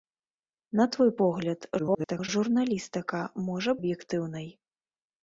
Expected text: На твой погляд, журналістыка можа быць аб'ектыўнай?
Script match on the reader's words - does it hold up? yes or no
no